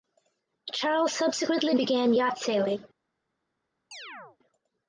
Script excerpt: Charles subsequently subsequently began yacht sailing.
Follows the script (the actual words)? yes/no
no